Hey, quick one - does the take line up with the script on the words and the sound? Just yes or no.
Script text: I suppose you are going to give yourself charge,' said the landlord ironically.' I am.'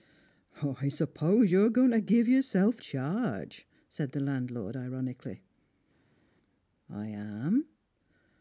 yes